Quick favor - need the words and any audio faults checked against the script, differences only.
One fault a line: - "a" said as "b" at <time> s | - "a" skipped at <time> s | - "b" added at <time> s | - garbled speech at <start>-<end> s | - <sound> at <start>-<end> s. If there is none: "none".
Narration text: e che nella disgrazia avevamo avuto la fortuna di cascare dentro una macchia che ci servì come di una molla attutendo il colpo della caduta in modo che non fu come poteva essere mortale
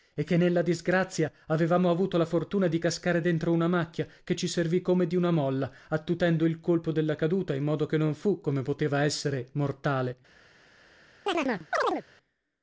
- chirp at 11.3-12.0 s